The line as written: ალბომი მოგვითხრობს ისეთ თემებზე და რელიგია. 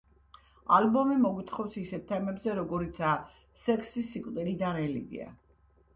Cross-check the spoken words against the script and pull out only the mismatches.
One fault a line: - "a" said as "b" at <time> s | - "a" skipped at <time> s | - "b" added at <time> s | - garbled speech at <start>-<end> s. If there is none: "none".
- "როგორიცაა სექსი სიკვდილი" added at 2.6 s